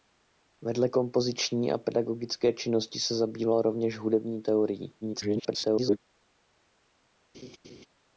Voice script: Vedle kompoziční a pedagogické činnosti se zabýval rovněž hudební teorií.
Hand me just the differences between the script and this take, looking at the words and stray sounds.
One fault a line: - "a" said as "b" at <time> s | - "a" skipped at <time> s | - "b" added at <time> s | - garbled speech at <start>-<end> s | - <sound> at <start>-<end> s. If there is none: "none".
- garbled speech at 5.0-6.0 s
- laugh at 7.3-7.9 s